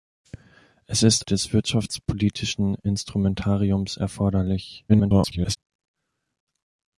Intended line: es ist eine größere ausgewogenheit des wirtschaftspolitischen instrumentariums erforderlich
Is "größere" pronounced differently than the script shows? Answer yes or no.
yes